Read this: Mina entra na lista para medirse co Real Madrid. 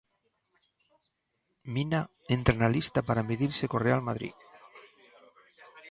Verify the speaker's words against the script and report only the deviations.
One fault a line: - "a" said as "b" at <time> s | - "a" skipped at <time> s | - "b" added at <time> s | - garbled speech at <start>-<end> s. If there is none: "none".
none